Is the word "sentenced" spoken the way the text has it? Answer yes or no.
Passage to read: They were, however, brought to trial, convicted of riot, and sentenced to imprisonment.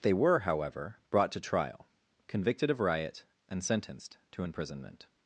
yes